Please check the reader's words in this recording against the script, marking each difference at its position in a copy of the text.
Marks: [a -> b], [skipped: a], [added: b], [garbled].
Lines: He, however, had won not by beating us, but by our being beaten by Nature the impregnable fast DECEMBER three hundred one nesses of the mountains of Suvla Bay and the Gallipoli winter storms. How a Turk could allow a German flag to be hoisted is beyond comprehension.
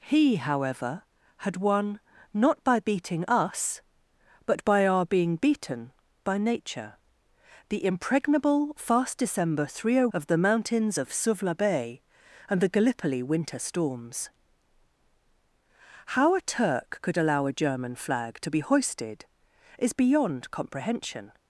He, however, had won not by beating us, but by our being beaten by Nature the impregnable fast DECEMBER three hundred [skipped: one nesses] of the mountains of Suvla Bay and the Gallipoli winter storms. How a Turk could allow a German flag to be hoisted is beyond comprehension.